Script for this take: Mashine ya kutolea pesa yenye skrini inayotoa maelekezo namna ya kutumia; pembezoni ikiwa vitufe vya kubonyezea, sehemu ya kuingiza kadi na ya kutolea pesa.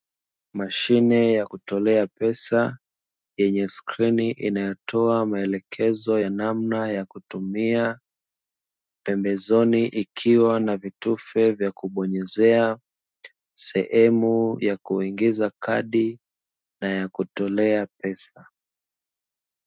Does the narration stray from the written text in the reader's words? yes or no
yes